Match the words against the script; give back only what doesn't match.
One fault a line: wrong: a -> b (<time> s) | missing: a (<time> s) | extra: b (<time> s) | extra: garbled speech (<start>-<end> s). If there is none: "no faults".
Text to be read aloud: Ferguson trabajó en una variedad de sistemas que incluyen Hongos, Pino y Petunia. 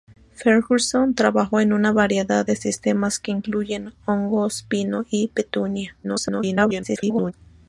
extra: garbled speech (6.0-7.3 s)